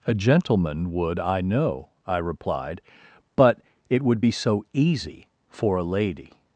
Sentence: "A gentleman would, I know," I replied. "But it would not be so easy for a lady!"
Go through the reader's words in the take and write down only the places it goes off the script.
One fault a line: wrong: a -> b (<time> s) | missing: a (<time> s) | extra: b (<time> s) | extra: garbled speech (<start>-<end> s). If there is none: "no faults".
missing: not (4.2 s)